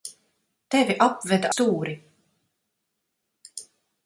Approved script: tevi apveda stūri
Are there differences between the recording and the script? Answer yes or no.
no